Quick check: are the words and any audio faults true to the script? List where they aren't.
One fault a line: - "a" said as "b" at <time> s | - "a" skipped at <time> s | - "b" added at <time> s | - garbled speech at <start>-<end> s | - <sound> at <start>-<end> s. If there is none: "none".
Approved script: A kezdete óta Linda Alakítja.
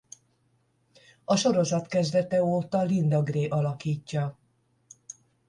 - "sorozat" added at 1.4 s
- "Gray" added at 3.2 s